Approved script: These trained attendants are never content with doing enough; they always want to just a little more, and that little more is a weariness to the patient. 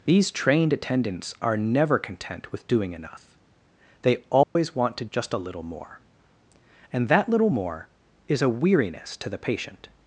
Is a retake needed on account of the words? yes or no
no